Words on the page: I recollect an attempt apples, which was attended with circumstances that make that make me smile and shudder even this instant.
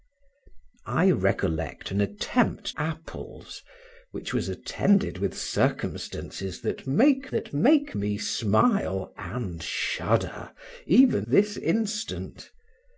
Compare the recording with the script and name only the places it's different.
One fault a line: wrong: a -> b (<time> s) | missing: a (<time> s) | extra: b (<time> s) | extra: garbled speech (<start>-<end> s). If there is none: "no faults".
no faults